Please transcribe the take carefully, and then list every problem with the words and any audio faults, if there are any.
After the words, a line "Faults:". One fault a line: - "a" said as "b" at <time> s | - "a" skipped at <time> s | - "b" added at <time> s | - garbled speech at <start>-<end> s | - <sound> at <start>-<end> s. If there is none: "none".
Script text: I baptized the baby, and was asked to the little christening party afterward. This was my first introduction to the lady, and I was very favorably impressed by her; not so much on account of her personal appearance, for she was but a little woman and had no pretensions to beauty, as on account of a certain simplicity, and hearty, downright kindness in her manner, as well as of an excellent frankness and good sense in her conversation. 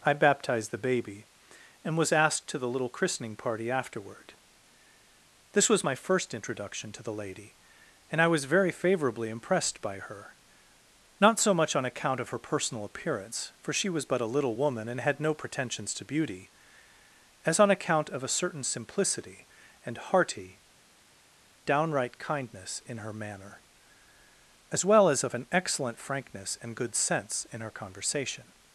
I baptized the baby, and was asked to the little christening party afterward. This was my first introduction to the lady, and I was very favorably impressed by her; not so much on account of her personal appearance, for she was but a little woman and had no pretensions to beauty, as on account of a certain simplicity, and hearty, downright kindness in her manner, as well as of an excellent frankness and good sense in her conversation.
Faults:
none